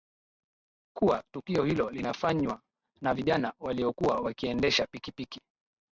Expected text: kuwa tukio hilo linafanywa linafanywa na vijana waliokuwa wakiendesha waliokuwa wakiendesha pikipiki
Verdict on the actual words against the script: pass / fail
fail